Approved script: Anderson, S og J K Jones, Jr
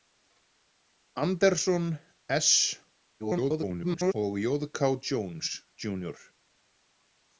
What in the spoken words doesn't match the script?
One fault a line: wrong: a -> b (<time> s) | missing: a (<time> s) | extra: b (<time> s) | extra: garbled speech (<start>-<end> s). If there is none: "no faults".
extra: garbled speech (3.2-4.1 s)